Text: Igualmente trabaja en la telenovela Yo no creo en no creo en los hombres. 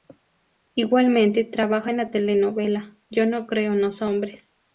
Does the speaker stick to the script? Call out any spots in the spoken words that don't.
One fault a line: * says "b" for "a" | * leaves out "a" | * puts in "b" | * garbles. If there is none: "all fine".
* leaves out "no creo en"